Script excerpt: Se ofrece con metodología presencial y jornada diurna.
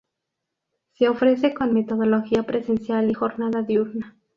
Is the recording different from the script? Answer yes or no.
no